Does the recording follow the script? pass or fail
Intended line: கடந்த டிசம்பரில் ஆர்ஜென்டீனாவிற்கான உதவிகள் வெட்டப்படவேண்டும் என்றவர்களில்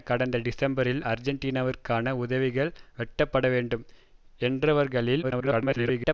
fail